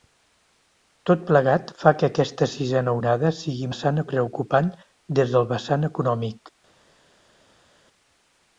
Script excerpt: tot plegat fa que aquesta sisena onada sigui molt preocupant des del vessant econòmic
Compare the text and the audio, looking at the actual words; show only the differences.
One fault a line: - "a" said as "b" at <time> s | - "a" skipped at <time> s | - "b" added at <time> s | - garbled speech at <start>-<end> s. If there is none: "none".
- "molt" said as "vessant" at 3.7 s